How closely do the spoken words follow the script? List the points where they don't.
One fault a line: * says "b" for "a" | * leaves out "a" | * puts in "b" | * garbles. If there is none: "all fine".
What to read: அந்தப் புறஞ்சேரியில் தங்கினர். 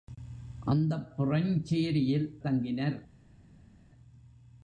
all fine